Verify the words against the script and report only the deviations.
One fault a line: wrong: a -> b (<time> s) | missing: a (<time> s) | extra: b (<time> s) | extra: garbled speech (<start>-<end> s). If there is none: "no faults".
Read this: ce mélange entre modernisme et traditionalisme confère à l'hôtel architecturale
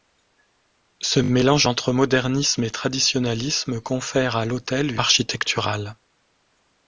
no faults